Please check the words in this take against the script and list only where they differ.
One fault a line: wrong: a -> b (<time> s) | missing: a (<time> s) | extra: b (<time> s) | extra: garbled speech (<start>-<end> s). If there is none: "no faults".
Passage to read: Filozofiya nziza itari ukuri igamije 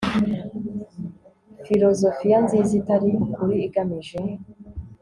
no faults